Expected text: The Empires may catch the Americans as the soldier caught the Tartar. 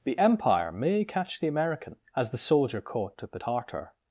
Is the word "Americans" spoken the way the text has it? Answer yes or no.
no